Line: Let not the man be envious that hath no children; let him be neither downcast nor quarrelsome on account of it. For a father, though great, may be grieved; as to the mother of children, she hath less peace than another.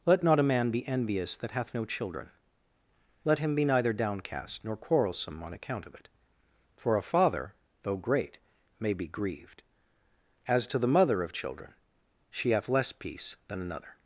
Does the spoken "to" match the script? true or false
true